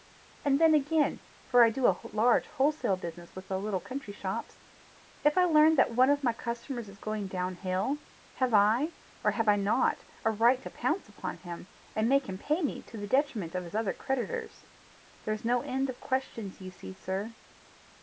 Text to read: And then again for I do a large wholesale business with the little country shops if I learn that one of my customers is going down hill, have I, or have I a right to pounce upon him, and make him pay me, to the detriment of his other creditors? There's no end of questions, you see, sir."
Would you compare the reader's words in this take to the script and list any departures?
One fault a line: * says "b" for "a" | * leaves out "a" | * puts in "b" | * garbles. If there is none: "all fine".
* puts in "not"